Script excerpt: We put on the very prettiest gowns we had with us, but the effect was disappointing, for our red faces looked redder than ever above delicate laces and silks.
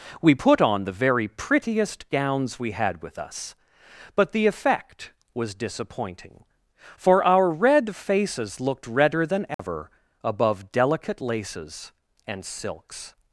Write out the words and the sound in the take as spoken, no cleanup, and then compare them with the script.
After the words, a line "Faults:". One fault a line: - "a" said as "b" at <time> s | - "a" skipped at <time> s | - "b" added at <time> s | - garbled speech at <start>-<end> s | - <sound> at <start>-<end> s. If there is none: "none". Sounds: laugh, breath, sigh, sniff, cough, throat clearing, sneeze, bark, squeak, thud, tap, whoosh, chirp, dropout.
We put on the very prettiest gowns we had with us, but the effect was disappointing, for our red faces looked redder than ever above delicate laces and silks.
Faults:
- dropout at 9.5-9.6 s